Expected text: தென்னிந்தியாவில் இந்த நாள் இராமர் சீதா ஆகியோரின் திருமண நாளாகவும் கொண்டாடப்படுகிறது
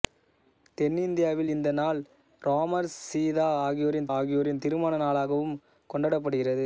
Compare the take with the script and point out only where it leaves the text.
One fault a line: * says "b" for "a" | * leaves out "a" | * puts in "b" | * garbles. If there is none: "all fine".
* puts in "ஆகியோரின்"